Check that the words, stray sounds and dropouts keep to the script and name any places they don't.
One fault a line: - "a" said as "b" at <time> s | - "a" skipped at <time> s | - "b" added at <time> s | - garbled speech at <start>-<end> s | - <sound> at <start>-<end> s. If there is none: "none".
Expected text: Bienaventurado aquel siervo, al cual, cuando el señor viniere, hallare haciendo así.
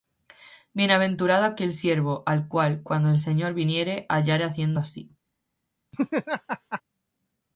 - laugh at 5.9-6.8 s